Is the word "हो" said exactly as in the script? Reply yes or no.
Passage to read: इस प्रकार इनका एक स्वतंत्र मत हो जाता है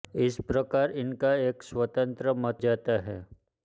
no